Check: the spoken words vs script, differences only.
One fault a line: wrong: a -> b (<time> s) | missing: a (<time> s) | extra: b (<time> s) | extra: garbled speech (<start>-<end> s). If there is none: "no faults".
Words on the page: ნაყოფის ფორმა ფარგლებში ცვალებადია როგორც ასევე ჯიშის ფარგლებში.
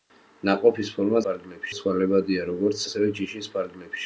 no faults